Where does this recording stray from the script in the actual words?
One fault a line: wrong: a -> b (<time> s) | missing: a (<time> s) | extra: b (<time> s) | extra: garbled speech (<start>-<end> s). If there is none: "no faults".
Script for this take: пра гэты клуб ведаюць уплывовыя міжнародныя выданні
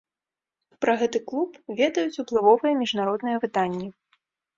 no faults